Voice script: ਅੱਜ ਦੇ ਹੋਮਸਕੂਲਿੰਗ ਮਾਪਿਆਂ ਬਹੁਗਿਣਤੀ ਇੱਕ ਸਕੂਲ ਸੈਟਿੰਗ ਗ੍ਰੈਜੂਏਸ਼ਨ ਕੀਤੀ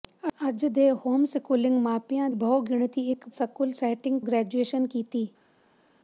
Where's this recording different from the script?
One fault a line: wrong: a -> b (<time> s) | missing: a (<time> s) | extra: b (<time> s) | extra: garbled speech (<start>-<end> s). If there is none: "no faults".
no faults